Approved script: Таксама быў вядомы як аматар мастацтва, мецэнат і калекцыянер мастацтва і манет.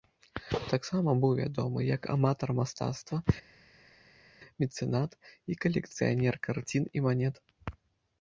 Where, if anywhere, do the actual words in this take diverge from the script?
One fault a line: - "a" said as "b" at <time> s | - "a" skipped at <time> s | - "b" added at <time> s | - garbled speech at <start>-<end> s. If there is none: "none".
- "мастацтва" said as "карцін" at 6.5 s